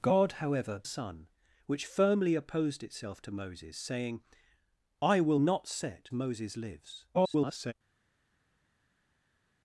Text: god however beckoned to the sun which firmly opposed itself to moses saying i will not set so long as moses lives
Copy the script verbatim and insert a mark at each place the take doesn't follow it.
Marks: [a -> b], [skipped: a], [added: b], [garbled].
god however [skipped: beckoned to the] sun which firmly opposed itself to moses saying i will not set [skipped: so long as] moses lives [garbled]